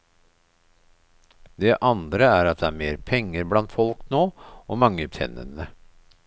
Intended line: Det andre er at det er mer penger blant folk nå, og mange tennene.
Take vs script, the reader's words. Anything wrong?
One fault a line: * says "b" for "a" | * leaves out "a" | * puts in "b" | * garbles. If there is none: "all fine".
all fine